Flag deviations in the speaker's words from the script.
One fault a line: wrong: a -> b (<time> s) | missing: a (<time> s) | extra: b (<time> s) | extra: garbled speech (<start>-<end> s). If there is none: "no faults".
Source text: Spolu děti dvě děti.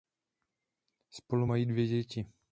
wrong: děti -> mají (1.4 s)